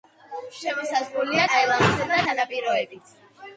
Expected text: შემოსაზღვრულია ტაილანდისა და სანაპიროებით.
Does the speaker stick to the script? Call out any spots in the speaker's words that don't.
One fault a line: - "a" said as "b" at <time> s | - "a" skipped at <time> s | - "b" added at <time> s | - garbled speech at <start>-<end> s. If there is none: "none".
none